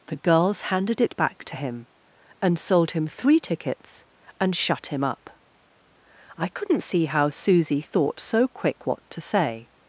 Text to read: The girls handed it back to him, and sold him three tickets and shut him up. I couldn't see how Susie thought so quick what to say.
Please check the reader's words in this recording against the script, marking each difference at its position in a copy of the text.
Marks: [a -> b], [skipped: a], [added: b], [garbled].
The girls handed it back to him, and sold him three tickets and shut him up. I couldn't see how Susie thought so quick what to say.